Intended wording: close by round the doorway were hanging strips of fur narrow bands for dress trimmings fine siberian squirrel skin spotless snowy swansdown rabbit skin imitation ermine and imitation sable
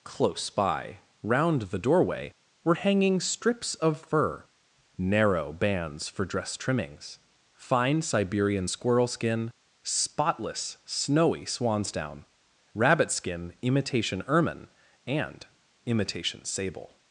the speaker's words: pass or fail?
pass